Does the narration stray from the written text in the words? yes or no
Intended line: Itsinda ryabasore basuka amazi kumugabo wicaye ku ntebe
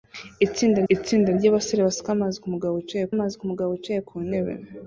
yes